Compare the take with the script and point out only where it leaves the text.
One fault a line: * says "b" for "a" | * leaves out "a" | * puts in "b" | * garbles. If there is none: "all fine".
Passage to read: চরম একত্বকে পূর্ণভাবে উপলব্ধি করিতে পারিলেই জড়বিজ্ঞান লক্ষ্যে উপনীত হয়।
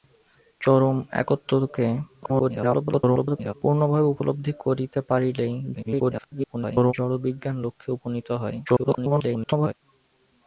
* garbles
* garbles
* garbles